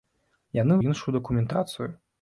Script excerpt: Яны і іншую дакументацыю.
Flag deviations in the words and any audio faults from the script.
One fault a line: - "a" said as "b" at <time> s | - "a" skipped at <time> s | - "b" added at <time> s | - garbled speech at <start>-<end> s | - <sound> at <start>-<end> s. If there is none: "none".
none